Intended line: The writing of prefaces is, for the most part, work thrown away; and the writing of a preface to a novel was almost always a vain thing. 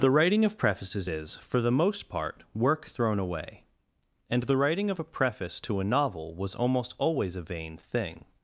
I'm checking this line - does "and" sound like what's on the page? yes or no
yes